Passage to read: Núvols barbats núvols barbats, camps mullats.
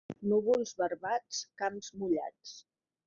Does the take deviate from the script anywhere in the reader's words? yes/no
yes